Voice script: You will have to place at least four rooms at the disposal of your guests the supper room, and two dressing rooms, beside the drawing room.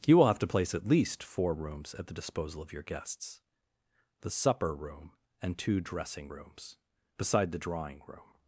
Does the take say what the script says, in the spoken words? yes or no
yes